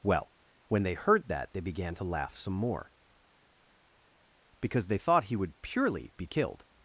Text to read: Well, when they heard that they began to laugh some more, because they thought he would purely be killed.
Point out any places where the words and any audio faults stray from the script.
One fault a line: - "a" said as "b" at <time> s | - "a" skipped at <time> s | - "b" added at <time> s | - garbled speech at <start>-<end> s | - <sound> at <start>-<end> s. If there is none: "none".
none